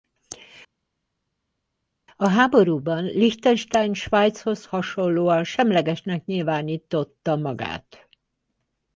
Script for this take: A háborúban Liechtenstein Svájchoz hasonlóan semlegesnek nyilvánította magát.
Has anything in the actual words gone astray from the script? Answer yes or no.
no